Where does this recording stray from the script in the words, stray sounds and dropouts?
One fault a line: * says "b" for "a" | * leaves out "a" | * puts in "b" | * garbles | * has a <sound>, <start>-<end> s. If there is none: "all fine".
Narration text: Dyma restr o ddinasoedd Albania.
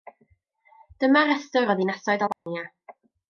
* has a dropout, 2.3-2.5 s